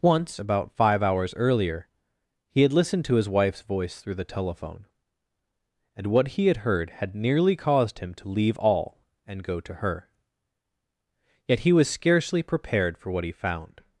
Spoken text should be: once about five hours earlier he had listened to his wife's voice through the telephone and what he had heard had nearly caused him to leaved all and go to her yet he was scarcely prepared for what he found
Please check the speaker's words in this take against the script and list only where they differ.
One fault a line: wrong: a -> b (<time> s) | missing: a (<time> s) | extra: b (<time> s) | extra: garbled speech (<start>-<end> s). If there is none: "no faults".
wrong: leaved -> leave (8.3 s)